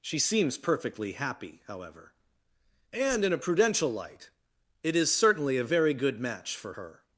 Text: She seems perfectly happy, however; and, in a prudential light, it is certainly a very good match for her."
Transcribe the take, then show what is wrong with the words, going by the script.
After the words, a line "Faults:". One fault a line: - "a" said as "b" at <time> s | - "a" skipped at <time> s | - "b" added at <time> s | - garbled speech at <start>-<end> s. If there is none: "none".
She seems perfectly happy, however; and, in a prudential light, it is certainly a very good match for her."
Faults:
none